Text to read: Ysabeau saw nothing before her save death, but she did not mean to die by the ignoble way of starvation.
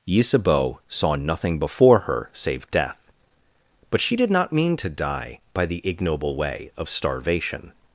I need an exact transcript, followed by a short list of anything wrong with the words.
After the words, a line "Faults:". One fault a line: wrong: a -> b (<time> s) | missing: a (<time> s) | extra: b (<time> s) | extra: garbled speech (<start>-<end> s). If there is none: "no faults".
Ysabeau saw nothing before her save death, but she did not mean to die by the ignoble way of starvation.
Faults:
no faults